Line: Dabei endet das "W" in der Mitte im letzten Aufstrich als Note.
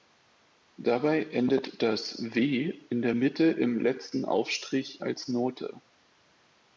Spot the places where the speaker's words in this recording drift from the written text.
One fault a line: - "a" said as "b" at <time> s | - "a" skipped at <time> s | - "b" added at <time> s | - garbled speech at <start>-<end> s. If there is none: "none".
none